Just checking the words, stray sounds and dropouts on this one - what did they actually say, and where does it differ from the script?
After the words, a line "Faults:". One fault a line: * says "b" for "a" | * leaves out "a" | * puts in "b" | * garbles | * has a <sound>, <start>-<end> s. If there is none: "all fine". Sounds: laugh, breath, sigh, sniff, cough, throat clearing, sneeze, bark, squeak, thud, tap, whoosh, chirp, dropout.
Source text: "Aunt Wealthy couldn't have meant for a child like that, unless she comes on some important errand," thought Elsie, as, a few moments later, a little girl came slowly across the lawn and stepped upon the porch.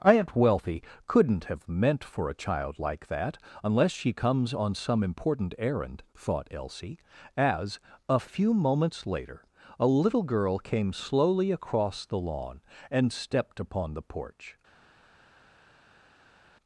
"Aunt Wealthy couldn't have meant for a child like that, unless she comes on some important errand," thought Elsie, as, a few moments later, a little girl came slowly across the lawn and stepped upon the porch.
Faults:
all fine